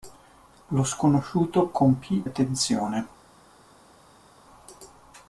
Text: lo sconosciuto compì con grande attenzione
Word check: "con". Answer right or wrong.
wrong